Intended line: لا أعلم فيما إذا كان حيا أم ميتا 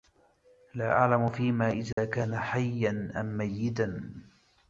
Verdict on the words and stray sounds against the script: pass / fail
fail